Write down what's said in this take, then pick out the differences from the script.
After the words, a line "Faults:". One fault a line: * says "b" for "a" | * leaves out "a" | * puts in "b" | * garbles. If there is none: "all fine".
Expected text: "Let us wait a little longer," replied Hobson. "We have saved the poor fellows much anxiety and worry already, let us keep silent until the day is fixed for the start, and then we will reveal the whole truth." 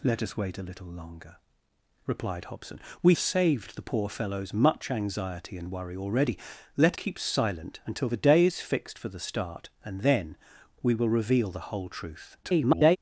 "Let us wait a little longer," replied Hobson. "We saved the poor fellows much anxiety and worry already, let keep silent until the day is fixed for the start, and then we will reveal the whole truth." [garbled]
Faults:
* leaves out "have"
* leaves out "us"
* garbles